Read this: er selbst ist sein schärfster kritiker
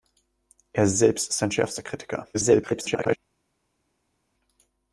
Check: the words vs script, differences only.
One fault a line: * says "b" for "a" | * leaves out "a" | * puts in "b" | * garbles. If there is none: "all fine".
* garbles